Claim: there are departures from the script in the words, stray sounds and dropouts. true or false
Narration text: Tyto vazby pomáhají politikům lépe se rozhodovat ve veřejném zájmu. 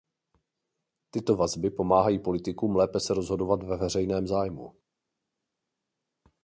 false